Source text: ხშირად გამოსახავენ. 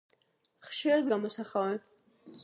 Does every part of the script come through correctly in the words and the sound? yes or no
yes